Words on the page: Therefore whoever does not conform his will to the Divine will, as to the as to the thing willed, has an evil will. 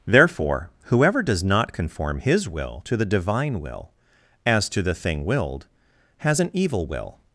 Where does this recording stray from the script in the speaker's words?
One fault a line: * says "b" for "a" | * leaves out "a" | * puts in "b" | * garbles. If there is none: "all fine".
* leaves out "as to the"